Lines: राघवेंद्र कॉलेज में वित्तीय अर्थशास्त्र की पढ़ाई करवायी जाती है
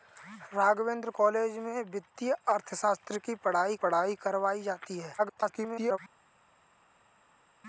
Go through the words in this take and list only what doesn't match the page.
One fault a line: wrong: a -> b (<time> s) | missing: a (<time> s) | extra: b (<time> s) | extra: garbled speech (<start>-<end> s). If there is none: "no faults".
extra: पढ़ाई (3.8 s)
extra: garbled speech (5.2-6.0 s)